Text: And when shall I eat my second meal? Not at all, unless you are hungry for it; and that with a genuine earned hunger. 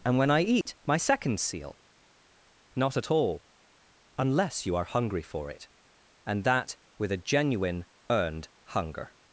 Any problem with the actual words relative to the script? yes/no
yes